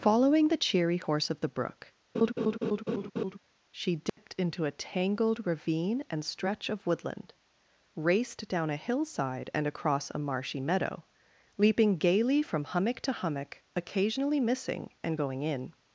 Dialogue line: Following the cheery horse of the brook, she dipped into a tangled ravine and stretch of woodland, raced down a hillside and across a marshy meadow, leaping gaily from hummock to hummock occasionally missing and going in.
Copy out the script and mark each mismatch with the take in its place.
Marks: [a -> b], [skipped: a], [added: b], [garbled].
Following the cheery horse of the brook, she dipped into a tangled ravine and stretch of woodland, raced down a hillside and across a marshy meadow, leaping gaily from hummock to hummock occasionally missing and going in.